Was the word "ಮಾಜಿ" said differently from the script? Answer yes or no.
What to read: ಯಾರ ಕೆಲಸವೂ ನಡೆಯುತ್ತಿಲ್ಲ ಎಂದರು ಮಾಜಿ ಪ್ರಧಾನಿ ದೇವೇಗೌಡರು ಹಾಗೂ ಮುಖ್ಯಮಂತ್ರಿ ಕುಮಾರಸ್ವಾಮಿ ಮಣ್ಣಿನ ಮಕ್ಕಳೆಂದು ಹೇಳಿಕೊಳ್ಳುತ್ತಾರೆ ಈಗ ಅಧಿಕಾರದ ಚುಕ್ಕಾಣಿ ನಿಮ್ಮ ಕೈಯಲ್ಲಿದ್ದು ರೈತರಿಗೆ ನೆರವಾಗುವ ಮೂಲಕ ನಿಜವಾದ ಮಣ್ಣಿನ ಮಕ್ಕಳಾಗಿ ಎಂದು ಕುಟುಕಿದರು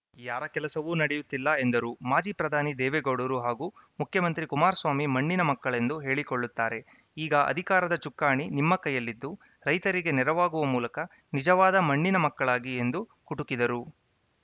no